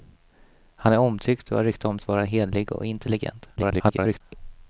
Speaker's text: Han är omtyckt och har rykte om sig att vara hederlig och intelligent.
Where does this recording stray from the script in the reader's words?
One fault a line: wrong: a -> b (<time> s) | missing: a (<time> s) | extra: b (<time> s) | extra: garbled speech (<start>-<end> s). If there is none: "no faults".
missing: sig (2.0 s)
extra: garbled speech (3.6-4.2 s)